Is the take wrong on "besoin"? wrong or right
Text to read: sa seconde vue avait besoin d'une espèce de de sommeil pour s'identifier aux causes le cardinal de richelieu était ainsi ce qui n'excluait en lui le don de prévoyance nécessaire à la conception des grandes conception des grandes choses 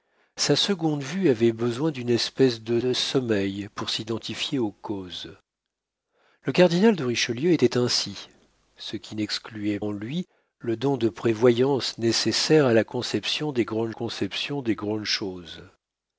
right